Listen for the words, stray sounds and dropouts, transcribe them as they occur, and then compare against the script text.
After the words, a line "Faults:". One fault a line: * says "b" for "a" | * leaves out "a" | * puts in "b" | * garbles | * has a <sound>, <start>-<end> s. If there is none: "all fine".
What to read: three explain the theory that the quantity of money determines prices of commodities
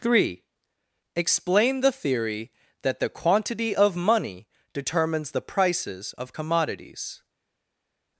three explain the theory that the quantity of money determines the prices of commodities
Faults:
* puts in "the"